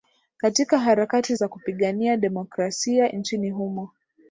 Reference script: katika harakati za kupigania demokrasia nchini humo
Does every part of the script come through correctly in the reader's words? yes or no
yes